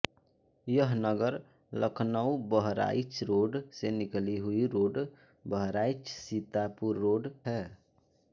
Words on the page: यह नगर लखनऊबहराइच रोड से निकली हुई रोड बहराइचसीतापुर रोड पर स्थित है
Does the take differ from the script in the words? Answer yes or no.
yes